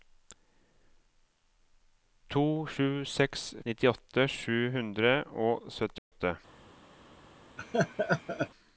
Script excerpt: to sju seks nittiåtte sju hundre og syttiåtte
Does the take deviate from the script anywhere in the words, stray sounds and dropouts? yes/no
yes